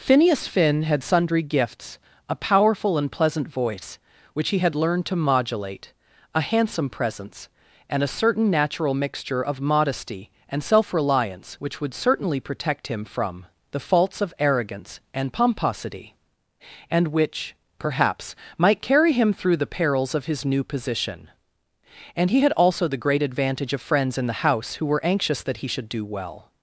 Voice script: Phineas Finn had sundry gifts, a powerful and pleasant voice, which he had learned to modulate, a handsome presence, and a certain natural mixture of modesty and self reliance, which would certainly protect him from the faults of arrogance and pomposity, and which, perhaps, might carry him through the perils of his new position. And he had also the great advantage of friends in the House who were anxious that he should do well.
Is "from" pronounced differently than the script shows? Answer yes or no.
no